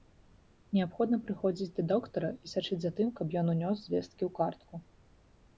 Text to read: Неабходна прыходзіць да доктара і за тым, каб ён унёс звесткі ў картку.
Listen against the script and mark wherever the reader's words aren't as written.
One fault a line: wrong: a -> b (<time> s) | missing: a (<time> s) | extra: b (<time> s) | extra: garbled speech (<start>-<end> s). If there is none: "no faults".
extra: сачыць (2.5 s)